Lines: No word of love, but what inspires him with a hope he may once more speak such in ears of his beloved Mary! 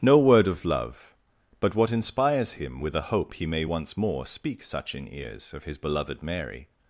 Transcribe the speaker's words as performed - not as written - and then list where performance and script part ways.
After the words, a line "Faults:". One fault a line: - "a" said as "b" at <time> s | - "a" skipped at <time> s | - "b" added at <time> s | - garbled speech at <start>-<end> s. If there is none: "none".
No word of love, but what inspires him with a hope he may once more speak such in ears of his beloved Mary!
Faults:
none